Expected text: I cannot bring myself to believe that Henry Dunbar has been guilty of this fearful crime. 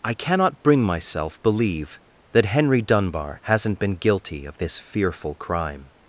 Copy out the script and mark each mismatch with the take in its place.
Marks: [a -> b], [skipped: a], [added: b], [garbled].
I cannot bring myself [skipped: to] believe that Henry Dunbar [has -> hasn't] been guilty of this fearful crime.